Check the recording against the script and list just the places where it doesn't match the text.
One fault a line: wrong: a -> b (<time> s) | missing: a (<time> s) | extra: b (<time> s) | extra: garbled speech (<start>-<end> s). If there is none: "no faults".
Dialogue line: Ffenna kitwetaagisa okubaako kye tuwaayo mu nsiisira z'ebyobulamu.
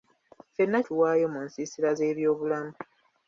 missing: kitwetaagisa okubaako kye (0.8 s)